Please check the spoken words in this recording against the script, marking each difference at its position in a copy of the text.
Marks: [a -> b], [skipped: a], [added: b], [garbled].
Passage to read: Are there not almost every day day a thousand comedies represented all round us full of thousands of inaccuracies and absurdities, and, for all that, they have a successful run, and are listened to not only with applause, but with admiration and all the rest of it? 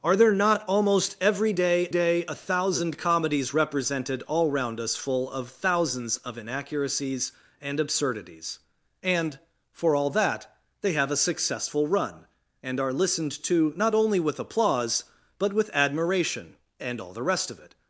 Are there not almost every day day a thousand comedies represented all round us full of thousands of inaccuracies and absurdities, and, for all that, they have a successful run, and are listened to not only with applause, but with admiration and all the rest of it?